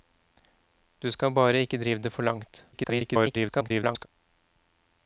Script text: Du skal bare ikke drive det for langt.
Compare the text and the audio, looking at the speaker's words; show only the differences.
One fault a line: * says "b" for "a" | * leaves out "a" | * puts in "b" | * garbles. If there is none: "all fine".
* garbles